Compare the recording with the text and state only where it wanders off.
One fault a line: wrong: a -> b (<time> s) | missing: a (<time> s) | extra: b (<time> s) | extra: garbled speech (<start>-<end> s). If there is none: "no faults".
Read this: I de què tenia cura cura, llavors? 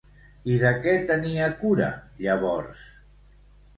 missing: cura (1.9 s)